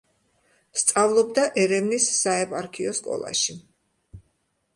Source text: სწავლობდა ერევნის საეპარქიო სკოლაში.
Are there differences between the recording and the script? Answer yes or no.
no